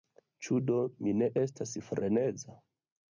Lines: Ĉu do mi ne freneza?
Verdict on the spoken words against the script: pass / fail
fail